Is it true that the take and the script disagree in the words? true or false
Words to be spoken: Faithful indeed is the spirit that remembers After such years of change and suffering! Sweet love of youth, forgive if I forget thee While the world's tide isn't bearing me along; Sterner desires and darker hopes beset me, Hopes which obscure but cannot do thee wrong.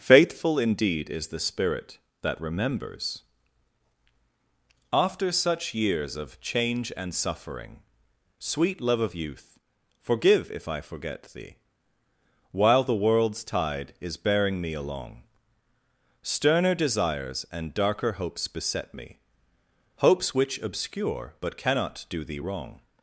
true